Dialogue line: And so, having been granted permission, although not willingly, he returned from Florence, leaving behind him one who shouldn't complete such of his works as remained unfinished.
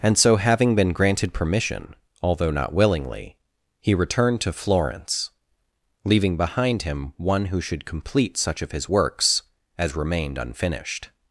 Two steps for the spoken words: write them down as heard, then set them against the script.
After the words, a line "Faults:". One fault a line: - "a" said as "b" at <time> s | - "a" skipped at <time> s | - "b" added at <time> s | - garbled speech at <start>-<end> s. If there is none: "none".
And so, having been granted permission, although not willingly, he returned to Florence, leaving behind him one who should complete such of his works as remained unfinished.
Faults:
- "from" said as "to" at 4.4 s
- "shouldn't" said as "should" at 7.6 s